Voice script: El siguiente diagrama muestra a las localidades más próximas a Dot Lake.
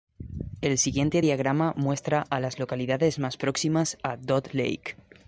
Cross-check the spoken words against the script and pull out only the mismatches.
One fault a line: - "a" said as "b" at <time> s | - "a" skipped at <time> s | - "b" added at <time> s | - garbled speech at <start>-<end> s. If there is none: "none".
none